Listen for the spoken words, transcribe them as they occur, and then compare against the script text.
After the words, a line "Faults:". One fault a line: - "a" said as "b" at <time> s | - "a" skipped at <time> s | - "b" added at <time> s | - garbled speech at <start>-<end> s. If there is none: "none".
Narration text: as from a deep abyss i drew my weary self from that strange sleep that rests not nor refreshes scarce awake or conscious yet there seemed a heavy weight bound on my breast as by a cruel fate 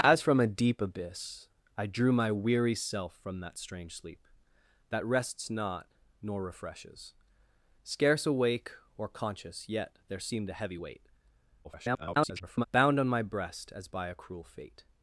as from a deep abyss i drew my weary self from that strange sleep that rests not nor refreshes scarce awake or conscious yet there seemed a heavy weight [garbled] bound on my breast as by a cruel fate
Faults:
- garbled speech at 11.6-12.7 s